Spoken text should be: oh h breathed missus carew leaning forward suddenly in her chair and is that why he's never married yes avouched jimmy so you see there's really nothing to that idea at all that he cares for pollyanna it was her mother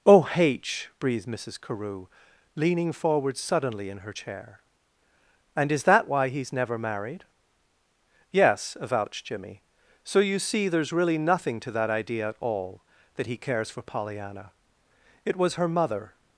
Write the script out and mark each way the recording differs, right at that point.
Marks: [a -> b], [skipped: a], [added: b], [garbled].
oh h breathed missus carew leaning forward suddenly in her chair and is that why he's never married yes avouched jimmy so you see there's really nothing to that idea at all that he cares for pollyanna it was her mother